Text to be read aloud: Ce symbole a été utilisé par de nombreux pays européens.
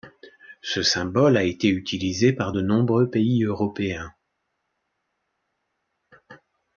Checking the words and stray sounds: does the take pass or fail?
pass